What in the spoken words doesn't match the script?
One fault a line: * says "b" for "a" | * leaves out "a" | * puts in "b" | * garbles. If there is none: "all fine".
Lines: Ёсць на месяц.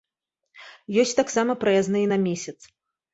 * puts in "таксама праязныя"